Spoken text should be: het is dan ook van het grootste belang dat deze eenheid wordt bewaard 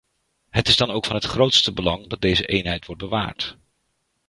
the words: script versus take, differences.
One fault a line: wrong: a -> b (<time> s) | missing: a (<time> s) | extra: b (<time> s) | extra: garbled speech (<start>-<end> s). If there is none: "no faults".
no faults